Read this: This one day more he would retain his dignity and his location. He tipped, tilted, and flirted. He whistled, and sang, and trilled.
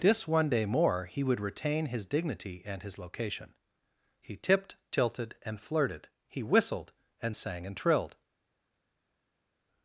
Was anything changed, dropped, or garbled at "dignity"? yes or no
no